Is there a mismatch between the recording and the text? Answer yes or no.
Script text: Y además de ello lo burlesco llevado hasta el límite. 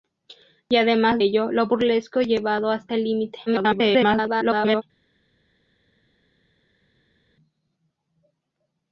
yes